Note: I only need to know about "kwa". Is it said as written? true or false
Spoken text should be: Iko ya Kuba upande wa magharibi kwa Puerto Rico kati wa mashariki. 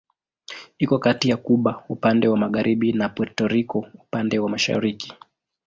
false